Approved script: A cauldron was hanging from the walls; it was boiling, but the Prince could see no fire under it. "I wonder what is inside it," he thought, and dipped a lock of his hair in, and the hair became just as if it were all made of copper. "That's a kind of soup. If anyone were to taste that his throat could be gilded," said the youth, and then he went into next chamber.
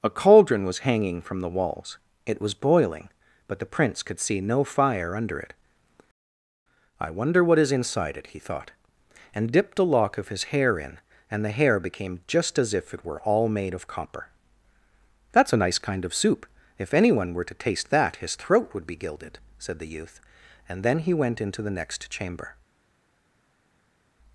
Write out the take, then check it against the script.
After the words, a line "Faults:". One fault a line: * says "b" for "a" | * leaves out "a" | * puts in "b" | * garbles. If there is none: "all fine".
A cauldron was hanging from the walls; it was boiling, but the Prince could see no fire under it. "I wonder what is inside it," he thought, and dipped a lock of his hair in, and the hair became just as if it were all made of copper. "That's a nice kind of soup. If anyone were to taste that his throat would be gilded," said the youth, and then he went into the next chamber.
Faults:
* puts in "nice"
* says "would" for "could"
* puts in "the"